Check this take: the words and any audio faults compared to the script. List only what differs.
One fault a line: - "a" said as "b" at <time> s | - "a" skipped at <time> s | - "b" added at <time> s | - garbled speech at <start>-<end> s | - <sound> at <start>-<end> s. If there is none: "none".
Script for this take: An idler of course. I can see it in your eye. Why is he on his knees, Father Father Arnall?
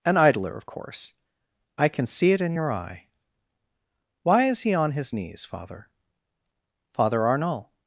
none